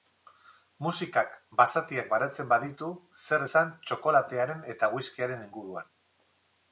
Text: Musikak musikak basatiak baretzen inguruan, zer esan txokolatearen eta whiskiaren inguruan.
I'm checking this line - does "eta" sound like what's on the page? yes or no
yes